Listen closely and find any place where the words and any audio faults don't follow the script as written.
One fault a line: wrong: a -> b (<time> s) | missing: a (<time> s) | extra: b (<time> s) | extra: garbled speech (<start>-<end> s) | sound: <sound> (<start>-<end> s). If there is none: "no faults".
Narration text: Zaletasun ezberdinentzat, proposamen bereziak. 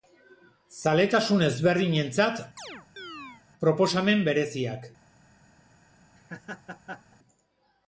sound: chirp (2.6-3.4 s)
sound: laugh (6.2-7.2 s)